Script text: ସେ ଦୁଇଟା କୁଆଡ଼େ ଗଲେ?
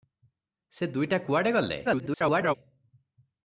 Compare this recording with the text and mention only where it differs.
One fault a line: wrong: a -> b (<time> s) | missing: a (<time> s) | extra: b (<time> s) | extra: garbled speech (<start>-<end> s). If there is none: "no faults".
extra: garbled speech (1.8-2.5 s)